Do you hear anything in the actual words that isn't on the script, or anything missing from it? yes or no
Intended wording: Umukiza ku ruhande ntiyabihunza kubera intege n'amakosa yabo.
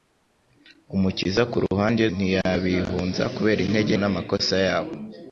no